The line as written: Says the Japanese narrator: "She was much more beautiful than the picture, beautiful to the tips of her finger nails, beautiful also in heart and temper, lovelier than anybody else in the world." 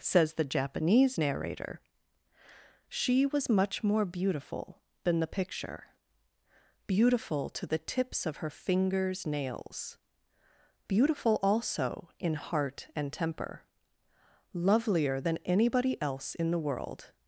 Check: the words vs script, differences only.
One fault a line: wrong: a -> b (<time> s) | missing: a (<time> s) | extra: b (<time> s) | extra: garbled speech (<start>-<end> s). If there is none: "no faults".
wrong: finger -> fingers (8.5 s)